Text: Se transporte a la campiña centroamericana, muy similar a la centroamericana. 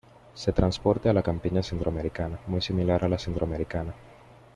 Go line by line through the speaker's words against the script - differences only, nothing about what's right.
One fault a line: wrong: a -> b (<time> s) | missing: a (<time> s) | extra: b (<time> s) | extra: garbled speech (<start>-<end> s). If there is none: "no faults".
no faults